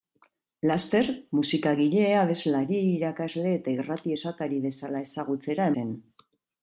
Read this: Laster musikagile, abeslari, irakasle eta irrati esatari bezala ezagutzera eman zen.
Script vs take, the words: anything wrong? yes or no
yes